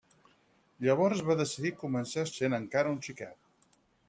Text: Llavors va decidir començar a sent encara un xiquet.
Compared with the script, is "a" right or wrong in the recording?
right